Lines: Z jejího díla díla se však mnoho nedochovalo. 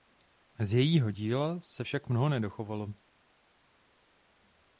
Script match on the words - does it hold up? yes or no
no